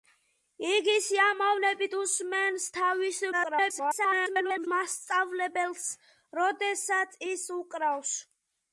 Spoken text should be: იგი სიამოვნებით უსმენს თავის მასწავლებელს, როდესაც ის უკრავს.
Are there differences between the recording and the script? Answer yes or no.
yes